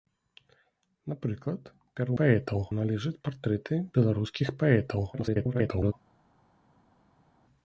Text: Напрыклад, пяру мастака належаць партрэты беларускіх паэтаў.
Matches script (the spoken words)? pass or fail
fail